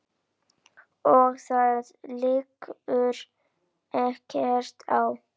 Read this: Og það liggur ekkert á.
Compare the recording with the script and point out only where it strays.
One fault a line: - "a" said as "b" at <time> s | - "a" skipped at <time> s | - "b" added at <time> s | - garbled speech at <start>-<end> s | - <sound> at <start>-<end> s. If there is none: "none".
none